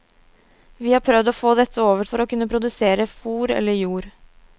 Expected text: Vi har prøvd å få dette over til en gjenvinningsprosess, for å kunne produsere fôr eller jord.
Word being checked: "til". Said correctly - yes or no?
no